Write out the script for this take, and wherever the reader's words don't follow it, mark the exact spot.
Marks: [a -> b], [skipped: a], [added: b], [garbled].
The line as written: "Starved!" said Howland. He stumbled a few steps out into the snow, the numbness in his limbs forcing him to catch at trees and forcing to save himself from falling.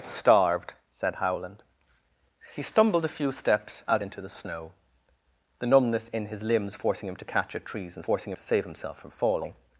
"Starved!" said Howland. He stumbled a few steps out into the snow, the numbness in his limbs forcing him to catch at trees and forcing to save himself from falling.